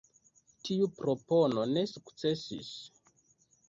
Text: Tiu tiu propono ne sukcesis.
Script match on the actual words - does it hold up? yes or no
no